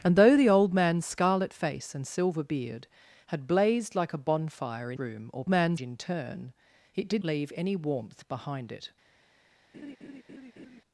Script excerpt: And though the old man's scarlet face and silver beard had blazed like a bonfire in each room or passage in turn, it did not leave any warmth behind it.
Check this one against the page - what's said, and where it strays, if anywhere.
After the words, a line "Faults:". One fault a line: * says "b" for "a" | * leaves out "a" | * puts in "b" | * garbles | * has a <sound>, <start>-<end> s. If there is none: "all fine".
And though the old man's scarlet face and silver beard had blazed like a bonfire in room or man's in turn, it did leave any warmth behind it.
Faults:
* leaves out "each"
* says "man's" for "passage"
* leaves out "not"
* has a laugh, 9.7-10.8 s